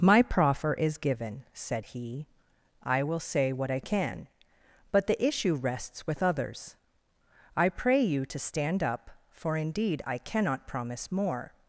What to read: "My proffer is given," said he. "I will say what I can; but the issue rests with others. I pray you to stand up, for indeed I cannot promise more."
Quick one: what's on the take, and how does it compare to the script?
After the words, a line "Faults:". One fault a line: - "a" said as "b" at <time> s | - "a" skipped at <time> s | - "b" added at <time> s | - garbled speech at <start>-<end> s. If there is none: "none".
"My proffer is given," said he. "I will say what I can; but the issue rests with others. I pray you to stand up, for indeed I cannot promise more."
Faults:
none